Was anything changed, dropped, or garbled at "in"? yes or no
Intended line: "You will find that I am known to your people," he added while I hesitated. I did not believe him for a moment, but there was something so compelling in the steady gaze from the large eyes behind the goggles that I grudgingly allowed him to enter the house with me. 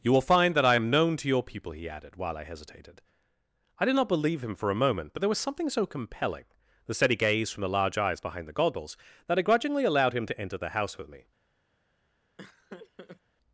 yes